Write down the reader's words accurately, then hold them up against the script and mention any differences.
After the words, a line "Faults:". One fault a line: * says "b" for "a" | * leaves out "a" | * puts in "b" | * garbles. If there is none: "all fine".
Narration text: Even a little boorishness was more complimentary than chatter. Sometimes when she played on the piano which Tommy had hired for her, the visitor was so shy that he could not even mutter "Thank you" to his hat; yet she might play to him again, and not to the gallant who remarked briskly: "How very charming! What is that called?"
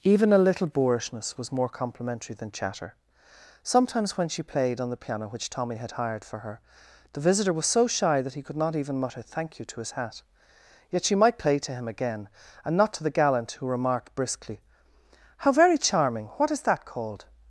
Even a little boorishness was more complimentary than chatter. Sometimes when she played on the piano which Tommy had hired for her, the visitor was so shy that he could not even mutter "Thank you" to his hat; yet she might play to him again, and not to the gallant who remarked briskly: "How very charming! What is that called?"
Faults:
all fine